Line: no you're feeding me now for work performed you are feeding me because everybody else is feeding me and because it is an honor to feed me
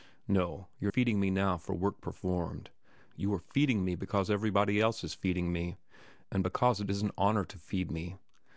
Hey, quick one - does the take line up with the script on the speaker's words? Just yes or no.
yes